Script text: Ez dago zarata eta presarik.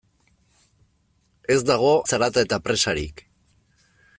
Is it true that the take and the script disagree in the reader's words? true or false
false